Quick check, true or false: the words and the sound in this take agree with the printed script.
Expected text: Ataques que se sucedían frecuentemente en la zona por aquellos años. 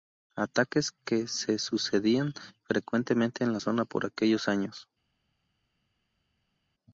true